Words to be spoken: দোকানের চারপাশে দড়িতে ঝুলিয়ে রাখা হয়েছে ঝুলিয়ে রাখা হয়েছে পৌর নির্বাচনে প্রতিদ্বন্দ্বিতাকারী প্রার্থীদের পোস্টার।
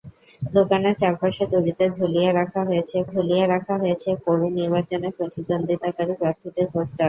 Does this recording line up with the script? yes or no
yes